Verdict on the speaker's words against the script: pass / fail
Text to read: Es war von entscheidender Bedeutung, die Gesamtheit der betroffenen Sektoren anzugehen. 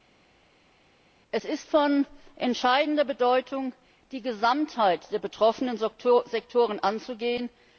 fail